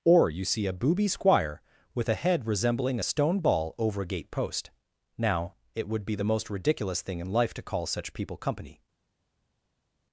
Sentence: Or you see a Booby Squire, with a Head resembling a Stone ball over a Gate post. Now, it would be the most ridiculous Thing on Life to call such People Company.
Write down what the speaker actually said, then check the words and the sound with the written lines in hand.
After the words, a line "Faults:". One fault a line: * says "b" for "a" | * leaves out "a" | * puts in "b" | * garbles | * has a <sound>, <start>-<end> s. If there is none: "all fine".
Or you see a Booby Squire, with a Head resembling a Stone ball over a Gate post. Now, it would be the most ridiculous Thing in Life to call such People Company.
Faults:
* says "in" for "on"